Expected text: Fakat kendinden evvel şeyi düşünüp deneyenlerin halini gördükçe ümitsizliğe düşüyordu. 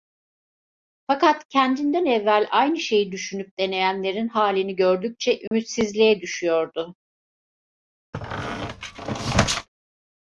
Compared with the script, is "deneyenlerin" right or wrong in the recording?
right